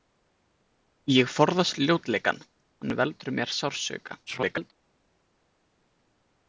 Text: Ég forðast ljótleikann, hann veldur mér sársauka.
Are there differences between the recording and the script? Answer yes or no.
yes